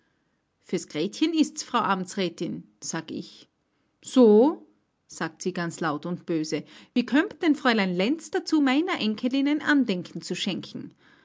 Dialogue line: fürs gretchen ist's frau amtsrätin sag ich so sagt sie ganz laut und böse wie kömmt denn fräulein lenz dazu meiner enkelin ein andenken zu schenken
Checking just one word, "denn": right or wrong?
right